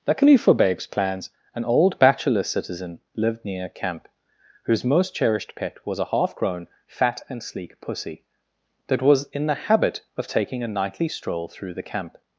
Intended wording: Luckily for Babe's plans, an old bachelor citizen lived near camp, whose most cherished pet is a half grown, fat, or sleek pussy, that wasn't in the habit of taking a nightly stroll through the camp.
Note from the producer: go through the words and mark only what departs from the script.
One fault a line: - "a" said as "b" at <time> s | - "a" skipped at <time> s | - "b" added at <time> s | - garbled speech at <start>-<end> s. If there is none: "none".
- "is" said as "was" at 5.8 s
- "or" said as "and" at 7.3 s
- "wasn't" said as "was" at 9.0 s